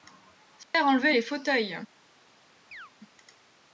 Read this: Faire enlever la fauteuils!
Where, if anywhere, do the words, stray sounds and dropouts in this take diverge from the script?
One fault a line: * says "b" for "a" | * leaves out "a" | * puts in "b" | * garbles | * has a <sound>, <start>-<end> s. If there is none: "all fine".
* has a dropout, 0.6-0.7 s
* says "les" for "la"
* has a chirp, 2.7-2.9 s